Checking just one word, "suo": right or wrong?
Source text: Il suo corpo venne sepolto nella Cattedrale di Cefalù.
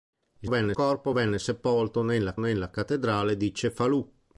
wrong